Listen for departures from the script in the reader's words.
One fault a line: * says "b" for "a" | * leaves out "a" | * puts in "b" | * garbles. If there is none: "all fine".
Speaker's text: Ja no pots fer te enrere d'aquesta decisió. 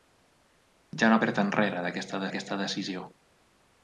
* leaves out "pots"
* puts in "d'aquesta"